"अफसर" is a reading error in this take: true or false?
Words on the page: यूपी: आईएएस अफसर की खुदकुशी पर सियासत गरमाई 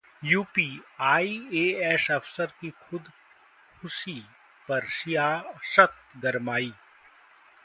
false